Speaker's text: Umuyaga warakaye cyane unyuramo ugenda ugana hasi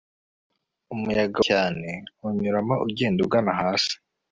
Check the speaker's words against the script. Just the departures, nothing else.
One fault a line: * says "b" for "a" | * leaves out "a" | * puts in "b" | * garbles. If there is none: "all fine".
* leaves out "warakaye"